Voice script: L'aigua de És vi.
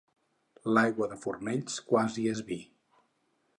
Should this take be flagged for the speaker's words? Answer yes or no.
yes